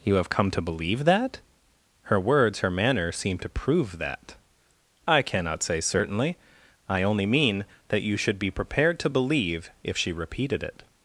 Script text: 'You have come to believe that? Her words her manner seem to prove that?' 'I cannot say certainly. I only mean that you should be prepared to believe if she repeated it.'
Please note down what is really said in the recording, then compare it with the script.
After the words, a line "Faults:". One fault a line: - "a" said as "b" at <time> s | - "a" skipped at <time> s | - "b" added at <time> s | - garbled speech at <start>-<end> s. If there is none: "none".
'You have come to believe that? Her words her manner seem to prove that?' 'I cannot say certainly. I only mean that you should be prepared to believe if she repeated it.'
Faults:
none